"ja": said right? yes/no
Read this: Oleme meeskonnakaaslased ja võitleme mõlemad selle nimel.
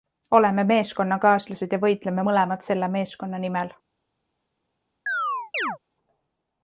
yes